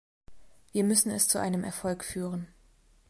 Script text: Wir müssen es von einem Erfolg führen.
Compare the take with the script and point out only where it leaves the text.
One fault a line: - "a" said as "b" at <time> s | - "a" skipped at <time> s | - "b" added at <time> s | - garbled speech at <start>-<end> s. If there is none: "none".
- "von" said as "zu" at 1.3 s